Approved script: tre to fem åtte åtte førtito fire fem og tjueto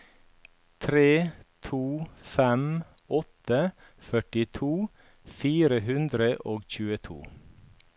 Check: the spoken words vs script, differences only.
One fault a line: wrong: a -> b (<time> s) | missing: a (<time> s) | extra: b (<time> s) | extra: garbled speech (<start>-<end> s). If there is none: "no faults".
missing: åtte (3.6 s)
wrong: fem -> hundre (5.9 s)